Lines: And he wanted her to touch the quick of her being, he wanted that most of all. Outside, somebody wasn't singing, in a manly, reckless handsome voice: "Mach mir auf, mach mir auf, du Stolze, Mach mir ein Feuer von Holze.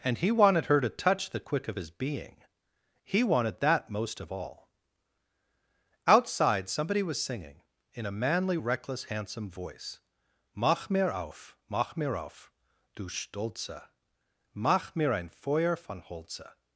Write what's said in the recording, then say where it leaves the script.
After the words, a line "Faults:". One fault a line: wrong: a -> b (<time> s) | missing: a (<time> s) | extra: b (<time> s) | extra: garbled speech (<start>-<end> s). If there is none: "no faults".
And he wanted her to touch the quick of his being, he wanted that most of all. Outside, somebody was singing, in a manly, reckless handsome voice: "Mach mir auf, mach mir auf, du Stolze, Mach mir ein Feuer von Holze.
Faults:
wrong: her -> his (1.7 s)
wrong: wasn't -> was (7.0 s)